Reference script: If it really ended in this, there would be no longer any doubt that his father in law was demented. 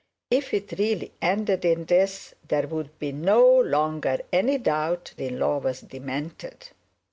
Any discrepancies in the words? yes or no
yes